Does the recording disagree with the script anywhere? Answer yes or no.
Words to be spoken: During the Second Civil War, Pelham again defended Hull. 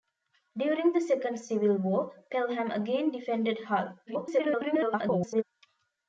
yes